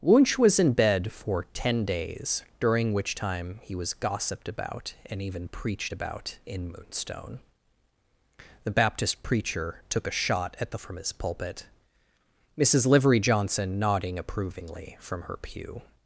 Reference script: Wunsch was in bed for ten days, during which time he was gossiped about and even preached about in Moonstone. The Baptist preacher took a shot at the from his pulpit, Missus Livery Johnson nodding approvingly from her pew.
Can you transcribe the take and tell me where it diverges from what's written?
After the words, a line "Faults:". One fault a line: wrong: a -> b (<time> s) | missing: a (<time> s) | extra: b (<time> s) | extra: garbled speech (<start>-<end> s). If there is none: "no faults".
Wunsch was in bed for ten days, during which time he was gossiped about and even preached about in Moonstone. The Baptist preacher took a shot at the from his pulpit, Missus Livery Johnson nodding approvingly from her pew.
Faults:
no faults